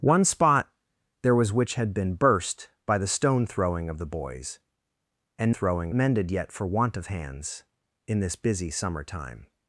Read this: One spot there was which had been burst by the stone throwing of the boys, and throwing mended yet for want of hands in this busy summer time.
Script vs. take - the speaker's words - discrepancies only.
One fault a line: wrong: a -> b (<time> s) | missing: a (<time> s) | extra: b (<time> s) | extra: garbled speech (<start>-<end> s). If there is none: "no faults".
no faults